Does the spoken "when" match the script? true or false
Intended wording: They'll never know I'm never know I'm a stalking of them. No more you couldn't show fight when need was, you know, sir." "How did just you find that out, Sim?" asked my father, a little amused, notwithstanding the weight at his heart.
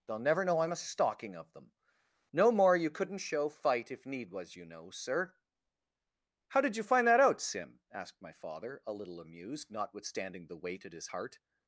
false